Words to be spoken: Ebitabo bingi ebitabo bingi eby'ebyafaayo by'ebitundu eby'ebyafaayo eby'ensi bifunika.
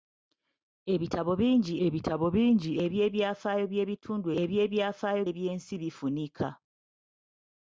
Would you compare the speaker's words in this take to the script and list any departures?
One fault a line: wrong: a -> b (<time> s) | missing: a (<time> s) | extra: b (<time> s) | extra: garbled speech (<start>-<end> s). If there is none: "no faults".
no faults